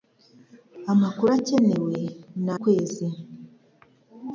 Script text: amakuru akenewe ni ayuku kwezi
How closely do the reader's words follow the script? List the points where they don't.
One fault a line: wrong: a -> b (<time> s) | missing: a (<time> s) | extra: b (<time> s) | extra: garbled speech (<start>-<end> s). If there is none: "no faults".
missing: ayuku (2.5 s)